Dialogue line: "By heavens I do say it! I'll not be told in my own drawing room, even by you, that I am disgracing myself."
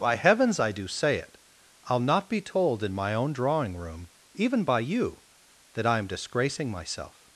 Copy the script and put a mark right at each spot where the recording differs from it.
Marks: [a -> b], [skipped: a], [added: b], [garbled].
"By heavens I do say it! I'll not be told in my own drawing room, even by you, that I am disgracing myself."